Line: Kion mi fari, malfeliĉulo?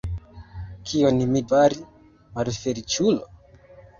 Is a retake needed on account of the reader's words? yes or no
no